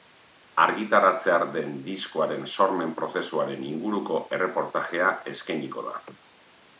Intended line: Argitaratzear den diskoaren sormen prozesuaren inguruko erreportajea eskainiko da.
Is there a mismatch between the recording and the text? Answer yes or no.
no